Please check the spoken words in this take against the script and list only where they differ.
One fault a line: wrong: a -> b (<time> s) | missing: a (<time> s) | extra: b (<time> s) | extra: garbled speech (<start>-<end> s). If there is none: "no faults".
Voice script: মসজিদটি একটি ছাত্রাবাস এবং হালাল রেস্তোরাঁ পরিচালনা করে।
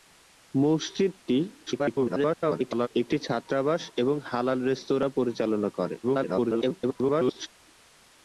extra: garbled speech (1.7-2.9 s)
extra: garbled speech (6.0-7.5 s)